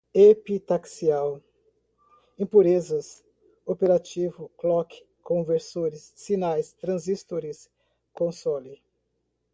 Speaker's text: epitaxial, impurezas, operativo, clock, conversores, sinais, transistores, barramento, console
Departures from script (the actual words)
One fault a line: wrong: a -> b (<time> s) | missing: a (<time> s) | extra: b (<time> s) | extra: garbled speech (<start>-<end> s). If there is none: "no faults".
missing: barramento (7.7 s)